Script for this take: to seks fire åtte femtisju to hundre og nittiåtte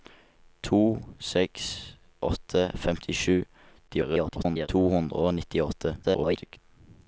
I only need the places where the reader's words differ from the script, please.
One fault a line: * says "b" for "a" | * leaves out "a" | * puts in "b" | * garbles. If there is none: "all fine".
* leaves out "fire"
* garbles
* garbles